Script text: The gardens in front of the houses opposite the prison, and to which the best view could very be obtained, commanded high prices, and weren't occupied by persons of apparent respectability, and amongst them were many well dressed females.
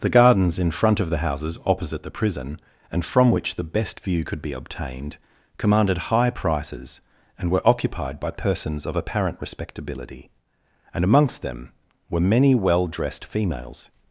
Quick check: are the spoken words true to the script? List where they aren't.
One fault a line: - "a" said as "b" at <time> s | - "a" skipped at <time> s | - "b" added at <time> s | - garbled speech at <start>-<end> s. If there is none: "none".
- "to" said as "from" at 3.0 s
- "very" skipped at 4.4 s
- "weren't" said as "were" at 7.5 s